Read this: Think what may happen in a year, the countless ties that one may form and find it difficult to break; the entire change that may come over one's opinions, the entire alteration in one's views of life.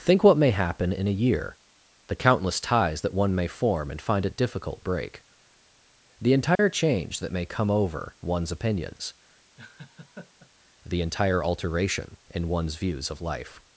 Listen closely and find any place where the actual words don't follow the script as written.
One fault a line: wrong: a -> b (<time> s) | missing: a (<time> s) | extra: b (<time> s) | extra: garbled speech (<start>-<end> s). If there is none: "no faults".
missing: to (4.8 s)